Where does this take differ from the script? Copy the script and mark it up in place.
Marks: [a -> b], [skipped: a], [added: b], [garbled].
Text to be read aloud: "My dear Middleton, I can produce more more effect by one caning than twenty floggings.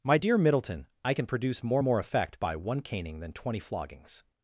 "My dear Middleton, I can produce more more effect by one caning than twenty floggings.